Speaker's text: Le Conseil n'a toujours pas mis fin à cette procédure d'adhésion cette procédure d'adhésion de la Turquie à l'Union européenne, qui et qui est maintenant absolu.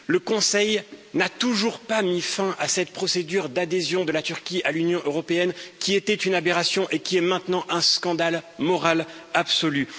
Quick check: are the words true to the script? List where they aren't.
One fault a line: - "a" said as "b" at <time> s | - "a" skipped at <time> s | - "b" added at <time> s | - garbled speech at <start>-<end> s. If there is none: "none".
- "cette procédure d'adhésion" skipped at 4.0 s
- "était une aberration" added at 5.9 s
- "un scandale moral" added at 7.7 s